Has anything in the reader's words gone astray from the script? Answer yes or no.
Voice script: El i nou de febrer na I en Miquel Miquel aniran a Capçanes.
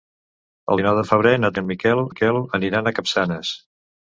no